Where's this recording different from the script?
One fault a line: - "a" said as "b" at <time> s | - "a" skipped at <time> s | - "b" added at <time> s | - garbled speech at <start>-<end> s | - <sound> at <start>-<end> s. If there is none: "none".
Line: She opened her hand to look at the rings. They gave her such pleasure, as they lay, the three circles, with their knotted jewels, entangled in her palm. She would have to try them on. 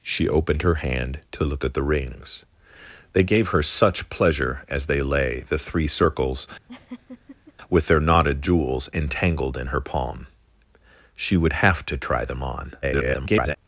- laugh at 6.7-7.5 s
- garbled speech at 12.8-13.6 s